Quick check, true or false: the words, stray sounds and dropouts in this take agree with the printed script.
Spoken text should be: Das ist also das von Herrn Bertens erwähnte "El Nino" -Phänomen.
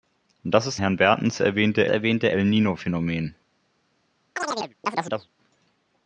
false